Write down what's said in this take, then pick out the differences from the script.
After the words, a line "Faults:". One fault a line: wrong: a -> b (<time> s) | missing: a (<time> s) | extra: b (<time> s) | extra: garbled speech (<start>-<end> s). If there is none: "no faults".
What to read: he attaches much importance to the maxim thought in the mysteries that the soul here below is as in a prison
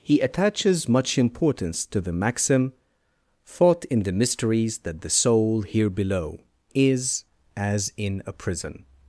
he attaches much importance to the maxim thought in the mysteries that the soul here below is as in a prison
Faults:
no faults